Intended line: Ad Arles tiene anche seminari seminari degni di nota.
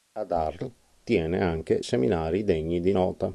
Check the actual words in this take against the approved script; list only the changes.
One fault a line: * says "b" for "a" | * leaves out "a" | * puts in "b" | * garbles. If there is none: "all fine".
* leaves out "seminari"